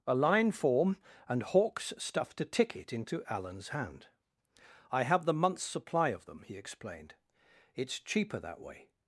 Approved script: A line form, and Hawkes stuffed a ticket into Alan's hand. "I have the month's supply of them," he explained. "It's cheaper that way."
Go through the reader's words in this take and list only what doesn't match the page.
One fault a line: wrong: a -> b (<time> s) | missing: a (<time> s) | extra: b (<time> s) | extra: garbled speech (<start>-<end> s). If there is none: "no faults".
no faults